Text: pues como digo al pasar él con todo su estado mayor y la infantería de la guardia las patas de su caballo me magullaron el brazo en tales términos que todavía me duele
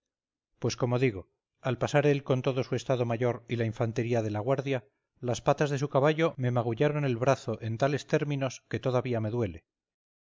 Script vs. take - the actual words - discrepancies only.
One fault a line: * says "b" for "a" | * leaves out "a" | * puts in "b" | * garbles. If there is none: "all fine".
all fine